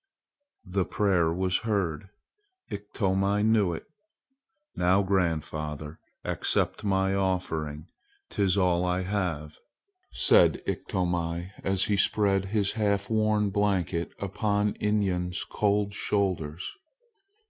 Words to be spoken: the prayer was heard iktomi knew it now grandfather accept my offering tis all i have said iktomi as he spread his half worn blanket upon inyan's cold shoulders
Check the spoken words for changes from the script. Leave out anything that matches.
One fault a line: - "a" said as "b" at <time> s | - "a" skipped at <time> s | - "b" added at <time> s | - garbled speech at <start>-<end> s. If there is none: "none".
none